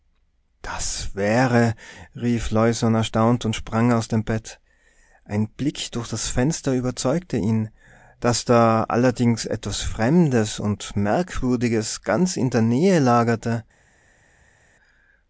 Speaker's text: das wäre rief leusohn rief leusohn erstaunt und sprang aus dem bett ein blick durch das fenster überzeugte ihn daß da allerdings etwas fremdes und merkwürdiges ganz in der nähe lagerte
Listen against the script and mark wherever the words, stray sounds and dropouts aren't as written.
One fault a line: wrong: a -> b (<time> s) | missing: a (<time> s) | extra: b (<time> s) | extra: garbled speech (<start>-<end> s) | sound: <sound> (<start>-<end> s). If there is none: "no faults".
missing: rief leusohn (3.0 s)